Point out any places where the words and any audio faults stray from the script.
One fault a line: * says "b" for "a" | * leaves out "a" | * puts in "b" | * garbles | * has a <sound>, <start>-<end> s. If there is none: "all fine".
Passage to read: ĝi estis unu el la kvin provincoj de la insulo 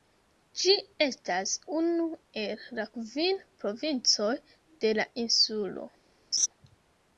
* says "estas" for "estis"
* has a laugh, 6.3-6.5 s